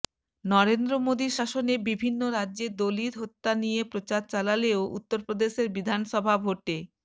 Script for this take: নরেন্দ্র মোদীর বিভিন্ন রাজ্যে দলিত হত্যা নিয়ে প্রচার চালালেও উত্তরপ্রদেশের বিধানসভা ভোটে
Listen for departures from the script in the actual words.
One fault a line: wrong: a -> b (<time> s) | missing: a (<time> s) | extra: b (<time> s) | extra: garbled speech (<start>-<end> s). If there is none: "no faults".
extra: শাসনে (1.4 s)